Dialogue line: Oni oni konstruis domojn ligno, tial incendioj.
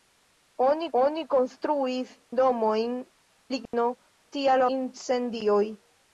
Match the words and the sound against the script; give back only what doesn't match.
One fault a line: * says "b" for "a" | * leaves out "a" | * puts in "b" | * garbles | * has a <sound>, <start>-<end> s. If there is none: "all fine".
* has a dropout, 3.7-3.7 s